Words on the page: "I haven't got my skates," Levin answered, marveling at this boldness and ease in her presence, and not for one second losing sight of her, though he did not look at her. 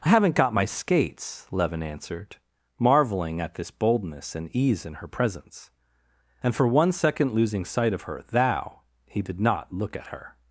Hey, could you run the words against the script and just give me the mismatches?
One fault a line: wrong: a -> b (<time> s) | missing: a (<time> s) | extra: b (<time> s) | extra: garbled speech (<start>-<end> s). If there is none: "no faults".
missing: not (6.5 s)
wrong: though -> thou (8.3 s)